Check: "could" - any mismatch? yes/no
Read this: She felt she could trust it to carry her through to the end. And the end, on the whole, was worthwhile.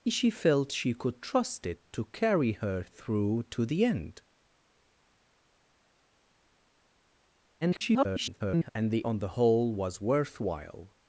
no